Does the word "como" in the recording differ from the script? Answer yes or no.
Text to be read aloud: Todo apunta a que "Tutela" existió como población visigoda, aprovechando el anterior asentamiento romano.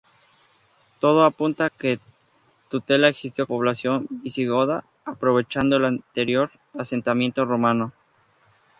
yes